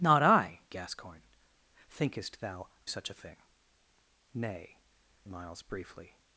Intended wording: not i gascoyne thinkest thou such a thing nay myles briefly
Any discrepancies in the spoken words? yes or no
no